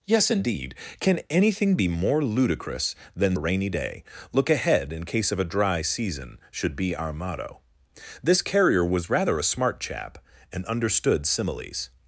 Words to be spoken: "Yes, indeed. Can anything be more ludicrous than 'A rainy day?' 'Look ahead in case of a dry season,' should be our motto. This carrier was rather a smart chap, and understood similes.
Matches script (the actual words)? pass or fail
pass